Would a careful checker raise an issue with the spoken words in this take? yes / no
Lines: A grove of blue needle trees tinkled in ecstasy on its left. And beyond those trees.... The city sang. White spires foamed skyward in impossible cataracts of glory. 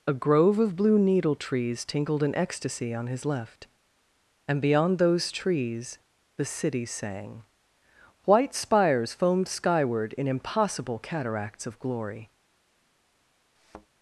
yes